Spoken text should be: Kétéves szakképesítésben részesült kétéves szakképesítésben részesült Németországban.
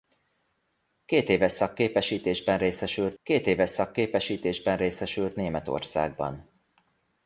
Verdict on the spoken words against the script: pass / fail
pass